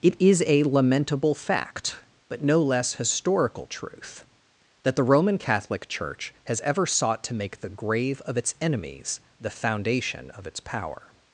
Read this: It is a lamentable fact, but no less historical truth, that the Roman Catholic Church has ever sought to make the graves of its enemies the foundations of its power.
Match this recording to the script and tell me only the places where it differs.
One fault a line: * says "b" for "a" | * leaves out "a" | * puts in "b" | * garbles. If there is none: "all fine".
* says "grave" for "graves"
* says "foundation" for "foundations"